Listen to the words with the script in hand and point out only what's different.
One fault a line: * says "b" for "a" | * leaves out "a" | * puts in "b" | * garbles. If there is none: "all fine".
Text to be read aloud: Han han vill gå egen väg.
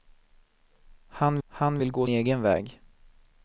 all fine